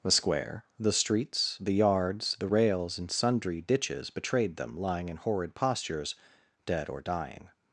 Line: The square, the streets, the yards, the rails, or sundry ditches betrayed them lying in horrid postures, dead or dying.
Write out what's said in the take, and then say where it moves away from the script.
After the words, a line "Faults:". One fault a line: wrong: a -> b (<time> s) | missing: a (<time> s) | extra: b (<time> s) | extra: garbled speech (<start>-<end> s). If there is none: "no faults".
The square, the streets, the yards, the rails, and sundry ditches betrayed them lying in horrid postures, dead or dying.
Faults:
wrong: or -> and (3.0 s)